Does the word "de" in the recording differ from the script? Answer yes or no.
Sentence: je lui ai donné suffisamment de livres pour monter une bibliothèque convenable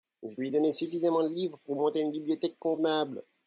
no